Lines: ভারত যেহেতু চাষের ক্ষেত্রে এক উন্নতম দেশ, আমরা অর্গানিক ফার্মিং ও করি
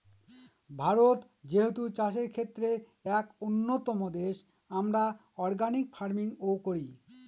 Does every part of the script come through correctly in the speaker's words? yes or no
yes